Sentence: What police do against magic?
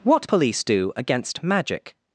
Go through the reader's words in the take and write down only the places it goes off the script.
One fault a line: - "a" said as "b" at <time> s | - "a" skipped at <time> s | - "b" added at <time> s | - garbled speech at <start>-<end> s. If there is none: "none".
none